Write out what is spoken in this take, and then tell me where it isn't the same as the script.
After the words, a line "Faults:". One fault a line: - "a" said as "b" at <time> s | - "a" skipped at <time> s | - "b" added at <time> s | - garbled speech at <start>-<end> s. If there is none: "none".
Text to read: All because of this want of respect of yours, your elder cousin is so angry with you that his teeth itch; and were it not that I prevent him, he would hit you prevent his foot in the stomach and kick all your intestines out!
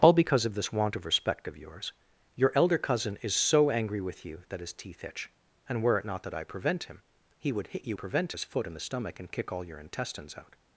All because of this want of respect of yours, your elder cousin is so angry with you that his teeth itch; and were it not that I prevent him, he would hit you prevent his foot in the stomach and kick all your intestines out!
Faults:
none